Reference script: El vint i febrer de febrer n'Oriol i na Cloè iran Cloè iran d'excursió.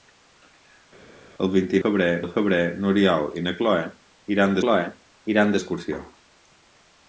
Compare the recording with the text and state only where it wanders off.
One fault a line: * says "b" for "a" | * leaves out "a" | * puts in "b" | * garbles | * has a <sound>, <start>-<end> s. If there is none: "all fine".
all fine